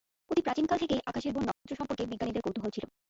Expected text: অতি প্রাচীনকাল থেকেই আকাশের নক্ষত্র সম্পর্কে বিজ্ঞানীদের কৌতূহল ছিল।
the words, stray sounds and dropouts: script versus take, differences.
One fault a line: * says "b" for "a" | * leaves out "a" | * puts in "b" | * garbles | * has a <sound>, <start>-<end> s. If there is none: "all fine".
* has a dropout, 1.5-1.7 s